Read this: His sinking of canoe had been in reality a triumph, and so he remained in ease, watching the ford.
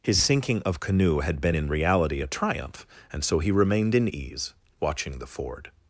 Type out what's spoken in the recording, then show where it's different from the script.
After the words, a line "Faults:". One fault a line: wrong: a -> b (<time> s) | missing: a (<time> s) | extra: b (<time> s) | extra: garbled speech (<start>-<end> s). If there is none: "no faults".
His sinking of canoe had been in reality a triumph, and so he remained in ease, watching the ford.
Faults:
no faults